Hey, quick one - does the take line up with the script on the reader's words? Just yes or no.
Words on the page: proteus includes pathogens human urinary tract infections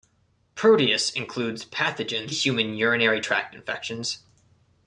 yes